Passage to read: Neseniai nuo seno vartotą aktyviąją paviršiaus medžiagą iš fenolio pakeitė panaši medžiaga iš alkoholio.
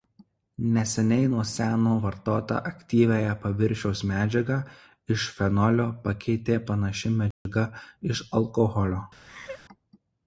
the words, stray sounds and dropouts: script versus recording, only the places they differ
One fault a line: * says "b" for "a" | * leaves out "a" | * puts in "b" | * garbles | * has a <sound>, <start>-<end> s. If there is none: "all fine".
* has a dropout, 7.3-7.5 s
* has a laugh, 9.3-9.6 s